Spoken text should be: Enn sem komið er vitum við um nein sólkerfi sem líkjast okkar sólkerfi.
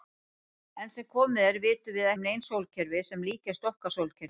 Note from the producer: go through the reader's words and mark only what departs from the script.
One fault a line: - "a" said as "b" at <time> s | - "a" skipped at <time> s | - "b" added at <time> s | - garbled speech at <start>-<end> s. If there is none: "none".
none